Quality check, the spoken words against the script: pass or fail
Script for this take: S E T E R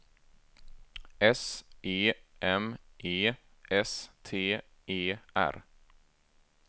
fail